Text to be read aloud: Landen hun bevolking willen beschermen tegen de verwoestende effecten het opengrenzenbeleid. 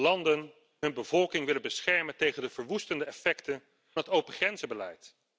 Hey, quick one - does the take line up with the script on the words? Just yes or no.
yes